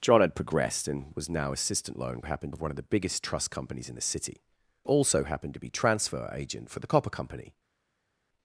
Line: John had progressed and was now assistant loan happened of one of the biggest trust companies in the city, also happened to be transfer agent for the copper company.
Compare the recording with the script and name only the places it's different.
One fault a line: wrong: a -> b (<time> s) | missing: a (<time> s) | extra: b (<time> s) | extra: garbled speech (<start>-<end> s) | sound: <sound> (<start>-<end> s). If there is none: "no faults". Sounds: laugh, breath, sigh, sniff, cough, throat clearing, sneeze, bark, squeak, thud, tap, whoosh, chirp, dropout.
no faults